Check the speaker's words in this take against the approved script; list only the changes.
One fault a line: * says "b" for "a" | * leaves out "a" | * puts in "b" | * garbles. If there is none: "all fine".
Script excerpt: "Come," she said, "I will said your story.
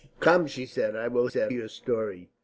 all fine